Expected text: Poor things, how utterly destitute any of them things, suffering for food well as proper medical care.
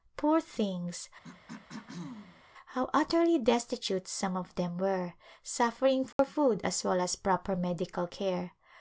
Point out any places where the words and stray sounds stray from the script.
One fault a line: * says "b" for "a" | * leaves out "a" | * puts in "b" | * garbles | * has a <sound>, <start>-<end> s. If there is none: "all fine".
* has a throat clearing, 1.2-2.4 s
* says "some" for "any"
* says "were" for "things"
* has a dropout, 6.1-6.2 s
* puts in "as"